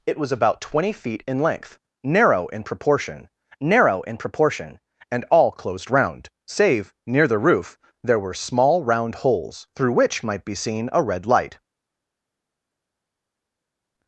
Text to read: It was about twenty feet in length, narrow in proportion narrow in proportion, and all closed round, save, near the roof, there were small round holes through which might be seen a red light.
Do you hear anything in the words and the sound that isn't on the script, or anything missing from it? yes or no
no